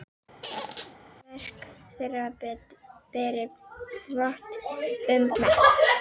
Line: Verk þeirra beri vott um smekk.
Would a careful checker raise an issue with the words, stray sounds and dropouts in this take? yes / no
yes